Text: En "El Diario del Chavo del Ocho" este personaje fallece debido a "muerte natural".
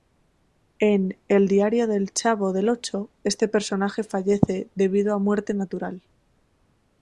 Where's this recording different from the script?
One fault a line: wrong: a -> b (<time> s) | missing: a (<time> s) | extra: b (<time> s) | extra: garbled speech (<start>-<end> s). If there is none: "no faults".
no faults